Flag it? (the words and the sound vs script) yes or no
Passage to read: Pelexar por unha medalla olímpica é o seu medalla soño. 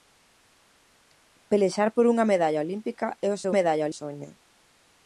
no